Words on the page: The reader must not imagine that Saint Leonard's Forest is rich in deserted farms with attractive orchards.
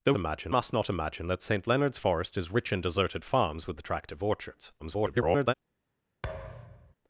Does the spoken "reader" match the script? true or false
false